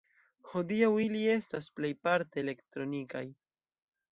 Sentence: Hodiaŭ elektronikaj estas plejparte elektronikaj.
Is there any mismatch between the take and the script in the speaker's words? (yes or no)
yes